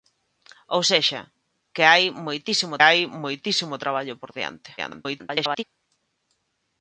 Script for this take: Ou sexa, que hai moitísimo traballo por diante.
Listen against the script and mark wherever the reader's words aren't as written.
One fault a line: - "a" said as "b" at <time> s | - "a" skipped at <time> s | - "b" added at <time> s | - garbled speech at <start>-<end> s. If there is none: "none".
- "hai moitísimo" added at 2.9 s
- garbled speech at 4.8-5.6 s